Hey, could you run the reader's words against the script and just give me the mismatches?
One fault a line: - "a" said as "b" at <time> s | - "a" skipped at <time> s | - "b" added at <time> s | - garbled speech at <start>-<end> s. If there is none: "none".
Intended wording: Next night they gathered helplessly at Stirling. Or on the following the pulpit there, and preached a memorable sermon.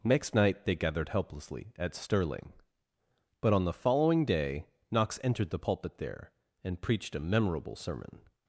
- "Or" said as "But" at 3.4 s
- "day Knox entered" added at 4.2 s